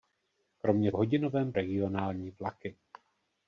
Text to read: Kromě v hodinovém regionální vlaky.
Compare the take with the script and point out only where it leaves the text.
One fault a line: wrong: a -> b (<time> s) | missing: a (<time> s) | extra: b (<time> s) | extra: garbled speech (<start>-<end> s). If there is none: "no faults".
no faults